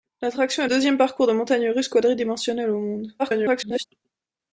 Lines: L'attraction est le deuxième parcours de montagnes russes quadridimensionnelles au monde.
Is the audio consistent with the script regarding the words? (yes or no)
no